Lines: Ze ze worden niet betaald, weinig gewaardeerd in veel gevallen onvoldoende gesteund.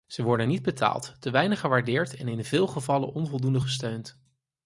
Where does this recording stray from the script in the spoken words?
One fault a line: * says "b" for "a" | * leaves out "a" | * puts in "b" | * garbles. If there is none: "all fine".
* leaves out "ze"
* puts in "te"
* puts in "en"